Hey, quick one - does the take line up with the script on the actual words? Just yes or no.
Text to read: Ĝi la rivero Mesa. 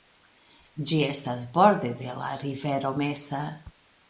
no